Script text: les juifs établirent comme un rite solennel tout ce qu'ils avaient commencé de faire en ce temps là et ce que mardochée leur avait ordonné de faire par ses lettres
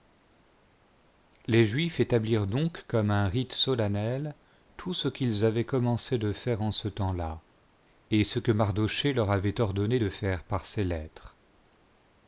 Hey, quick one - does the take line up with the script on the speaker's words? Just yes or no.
no